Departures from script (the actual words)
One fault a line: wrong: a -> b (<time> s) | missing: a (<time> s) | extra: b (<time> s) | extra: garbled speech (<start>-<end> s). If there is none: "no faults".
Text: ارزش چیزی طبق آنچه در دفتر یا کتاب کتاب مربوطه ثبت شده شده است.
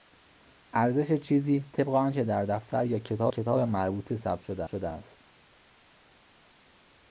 no faults